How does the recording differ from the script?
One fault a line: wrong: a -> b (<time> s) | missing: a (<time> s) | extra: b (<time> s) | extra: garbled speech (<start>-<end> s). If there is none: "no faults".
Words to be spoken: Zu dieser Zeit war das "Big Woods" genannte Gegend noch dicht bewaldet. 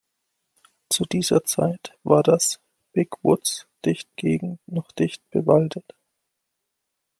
wrong: genannte -> dicht (3.8 s)